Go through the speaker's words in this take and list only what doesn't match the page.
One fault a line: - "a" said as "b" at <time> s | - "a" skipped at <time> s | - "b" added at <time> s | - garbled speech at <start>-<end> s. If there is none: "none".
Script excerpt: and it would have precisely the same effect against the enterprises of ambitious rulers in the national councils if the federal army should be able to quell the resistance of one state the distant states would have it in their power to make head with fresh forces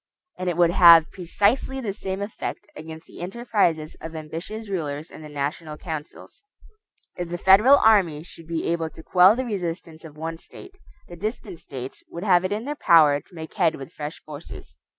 none